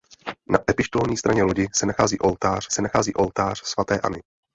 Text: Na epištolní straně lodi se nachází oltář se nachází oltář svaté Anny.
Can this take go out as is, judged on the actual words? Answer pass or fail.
pass